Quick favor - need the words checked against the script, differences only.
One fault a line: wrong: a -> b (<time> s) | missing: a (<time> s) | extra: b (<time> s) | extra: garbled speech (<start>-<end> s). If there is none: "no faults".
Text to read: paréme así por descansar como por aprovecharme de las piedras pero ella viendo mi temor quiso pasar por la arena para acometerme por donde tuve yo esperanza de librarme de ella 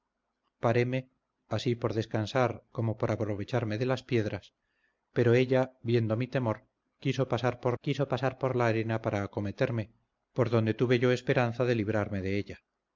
extra: quiso pasar por (7.8 s)